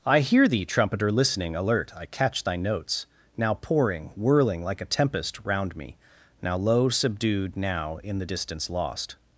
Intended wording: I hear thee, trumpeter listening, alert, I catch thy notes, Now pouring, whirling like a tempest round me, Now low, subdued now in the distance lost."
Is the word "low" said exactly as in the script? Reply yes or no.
yes